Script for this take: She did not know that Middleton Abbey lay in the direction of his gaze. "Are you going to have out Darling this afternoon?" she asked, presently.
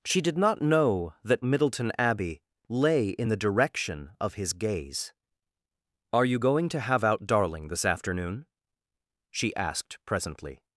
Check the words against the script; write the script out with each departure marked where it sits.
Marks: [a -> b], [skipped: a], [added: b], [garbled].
She did not know that Middleton Abbey lay in the direction of his gaze. "Are you going to have out Darling this afternoon?" she asked, presently.